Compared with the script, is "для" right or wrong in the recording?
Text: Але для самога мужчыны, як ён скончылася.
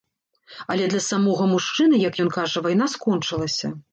right